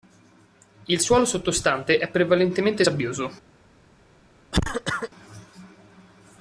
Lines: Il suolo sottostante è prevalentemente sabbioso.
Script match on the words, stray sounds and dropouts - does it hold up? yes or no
no